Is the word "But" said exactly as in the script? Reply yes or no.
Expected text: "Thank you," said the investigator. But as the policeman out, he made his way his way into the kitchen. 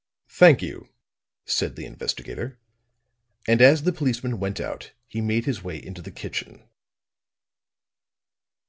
no